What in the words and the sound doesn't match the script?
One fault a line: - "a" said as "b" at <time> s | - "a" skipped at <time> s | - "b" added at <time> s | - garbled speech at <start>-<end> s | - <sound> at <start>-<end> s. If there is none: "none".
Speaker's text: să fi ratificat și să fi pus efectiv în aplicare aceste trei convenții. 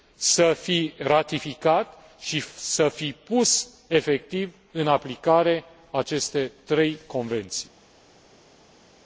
none